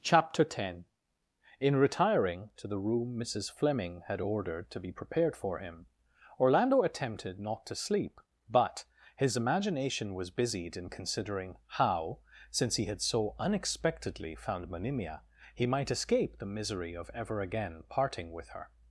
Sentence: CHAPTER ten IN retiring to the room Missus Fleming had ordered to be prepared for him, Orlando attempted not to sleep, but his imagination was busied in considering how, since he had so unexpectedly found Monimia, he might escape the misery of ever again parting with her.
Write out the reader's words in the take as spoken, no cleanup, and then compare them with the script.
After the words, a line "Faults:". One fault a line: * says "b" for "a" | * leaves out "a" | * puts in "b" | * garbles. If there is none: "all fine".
CHAPTER ten IN retiring to the room Missus Fleming had ordered to be prepared for him, Orlando attempted not to sleep, but his imagination was busied in considering how, since he had so unexpectedly found Monimia, he might escape the misery of ever again parting with her.
Faults:
all fine